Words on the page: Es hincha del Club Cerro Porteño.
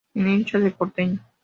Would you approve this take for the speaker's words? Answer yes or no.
no